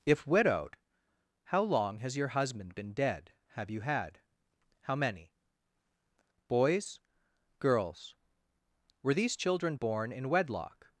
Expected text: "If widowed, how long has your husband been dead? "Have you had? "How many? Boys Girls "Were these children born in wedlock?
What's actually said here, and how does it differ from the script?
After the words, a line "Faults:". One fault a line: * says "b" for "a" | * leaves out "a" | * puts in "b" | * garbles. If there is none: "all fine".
"If widowed, how long has your husband been dead? "Have you had? "How many? Boys Girls "Were these children born in wedlock?
Faults:
all fine